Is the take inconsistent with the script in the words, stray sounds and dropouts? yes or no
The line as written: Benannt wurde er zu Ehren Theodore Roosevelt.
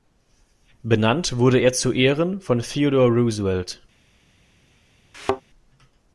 yes